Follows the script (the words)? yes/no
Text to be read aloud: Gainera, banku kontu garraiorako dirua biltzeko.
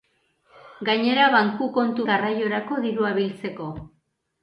yes